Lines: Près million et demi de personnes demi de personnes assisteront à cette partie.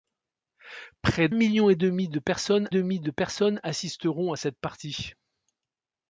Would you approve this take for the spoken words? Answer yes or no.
yes